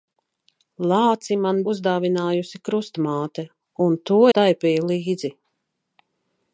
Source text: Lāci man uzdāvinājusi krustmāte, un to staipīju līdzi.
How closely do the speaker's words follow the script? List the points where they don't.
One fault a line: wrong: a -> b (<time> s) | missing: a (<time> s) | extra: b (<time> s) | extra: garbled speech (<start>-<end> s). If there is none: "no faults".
no faults